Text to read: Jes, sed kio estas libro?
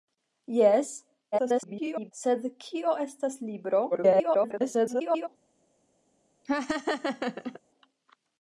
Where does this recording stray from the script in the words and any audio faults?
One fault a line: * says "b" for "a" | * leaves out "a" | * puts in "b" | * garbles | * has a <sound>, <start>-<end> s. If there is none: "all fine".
* garbles
* garbles
* has a laugh, 6.4-7.6 s